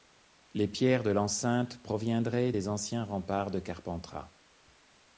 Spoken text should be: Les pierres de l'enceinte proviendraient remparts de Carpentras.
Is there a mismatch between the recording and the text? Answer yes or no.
yes